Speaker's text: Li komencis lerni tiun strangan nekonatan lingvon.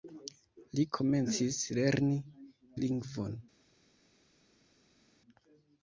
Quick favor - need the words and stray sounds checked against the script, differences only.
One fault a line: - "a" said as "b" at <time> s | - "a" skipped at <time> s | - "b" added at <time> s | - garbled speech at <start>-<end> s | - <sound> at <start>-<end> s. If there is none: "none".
- "tiun strangan nekonatan" skipped at 2.2 s